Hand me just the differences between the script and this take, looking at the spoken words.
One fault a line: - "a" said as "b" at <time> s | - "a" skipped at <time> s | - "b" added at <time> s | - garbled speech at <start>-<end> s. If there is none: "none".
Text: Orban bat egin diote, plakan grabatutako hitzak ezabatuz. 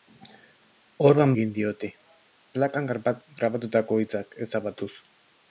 - "bat" skipped at 1.4 s